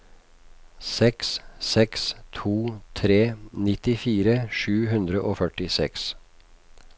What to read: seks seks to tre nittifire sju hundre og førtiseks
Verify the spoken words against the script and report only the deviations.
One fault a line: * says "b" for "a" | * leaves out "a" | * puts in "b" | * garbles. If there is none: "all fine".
all fine